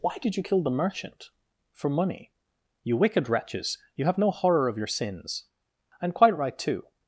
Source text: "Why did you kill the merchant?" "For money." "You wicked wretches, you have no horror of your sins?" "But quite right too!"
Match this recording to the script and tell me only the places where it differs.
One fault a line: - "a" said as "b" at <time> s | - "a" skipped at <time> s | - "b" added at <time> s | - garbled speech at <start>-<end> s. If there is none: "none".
- "But" said as "And" at 6.0 s